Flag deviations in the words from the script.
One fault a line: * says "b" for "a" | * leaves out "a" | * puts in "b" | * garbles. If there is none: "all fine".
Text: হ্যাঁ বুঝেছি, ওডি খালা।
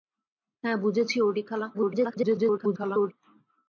* garbles